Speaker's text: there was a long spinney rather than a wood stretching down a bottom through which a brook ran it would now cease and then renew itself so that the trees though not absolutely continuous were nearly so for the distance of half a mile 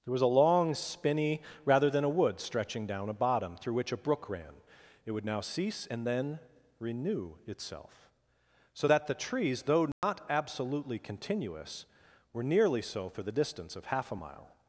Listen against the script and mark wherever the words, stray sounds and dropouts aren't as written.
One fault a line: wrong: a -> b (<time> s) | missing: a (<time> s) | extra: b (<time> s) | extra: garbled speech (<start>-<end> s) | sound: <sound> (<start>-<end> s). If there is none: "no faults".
sound: dropout (9.9-10.0 s)